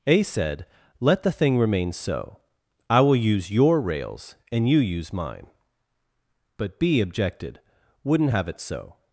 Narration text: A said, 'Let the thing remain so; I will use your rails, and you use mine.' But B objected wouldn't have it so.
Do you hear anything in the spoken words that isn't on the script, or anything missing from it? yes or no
no